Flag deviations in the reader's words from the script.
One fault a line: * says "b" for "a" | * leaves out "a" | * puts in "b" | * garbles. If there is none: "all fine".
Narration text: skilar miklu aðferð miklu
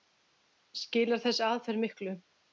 * says "þessi" for "miklu"